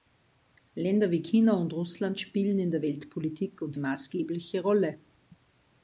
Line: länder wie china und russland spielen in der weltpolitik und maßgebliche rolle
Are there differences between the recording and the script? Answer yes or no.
no